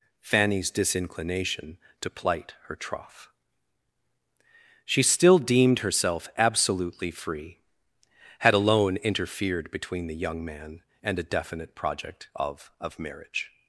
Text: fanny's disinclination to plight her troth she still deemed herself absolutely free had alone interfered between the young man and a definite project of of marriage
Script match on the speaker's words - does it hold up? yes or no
yes